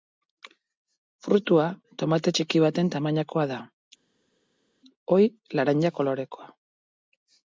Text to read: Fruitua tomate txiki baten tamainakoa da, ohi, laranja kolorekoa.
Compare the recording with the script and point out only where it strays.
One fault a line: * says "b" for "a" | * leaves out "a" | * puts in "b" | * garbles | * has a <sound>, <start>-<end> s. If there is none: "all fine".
all fine